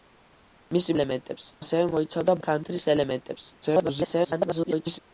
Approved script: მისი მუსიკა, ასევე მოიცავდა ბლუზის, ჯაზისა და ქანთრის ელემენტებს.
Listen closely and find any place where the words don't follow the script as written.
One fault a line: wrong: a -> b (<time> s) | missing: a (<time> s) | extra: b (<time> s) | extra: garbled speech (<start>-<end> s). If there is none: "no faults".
wrong: მუსიკა -> ელემენტებს (1.0 s)
missing: ბლუზის ჯაზისა (2.4 s)
extra: garbled speech (3.6-5.0 s)